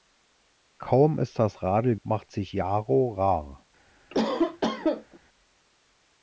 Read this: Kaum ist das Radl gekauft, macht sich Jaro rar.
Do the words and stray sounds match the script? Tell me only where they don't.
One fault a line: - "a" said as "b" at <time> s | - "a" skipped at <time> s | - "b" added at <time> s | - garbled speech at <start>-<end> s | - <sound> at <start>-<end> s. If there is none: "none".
- "gekauft" skipped at 1.9 s
- cough at 4.1-5.2 s